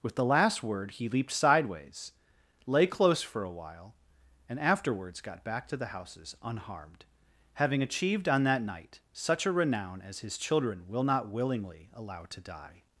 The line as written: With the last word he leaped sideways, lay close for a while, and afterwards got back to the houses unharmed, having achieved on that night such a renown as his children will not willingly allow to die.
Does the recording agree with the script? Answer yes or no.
yes